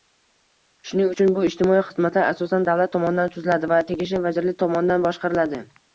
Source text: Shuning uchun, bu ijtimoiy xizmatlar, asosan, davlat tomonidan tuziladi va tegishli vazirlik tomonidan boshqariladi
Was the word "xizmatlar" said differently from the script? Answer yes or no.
no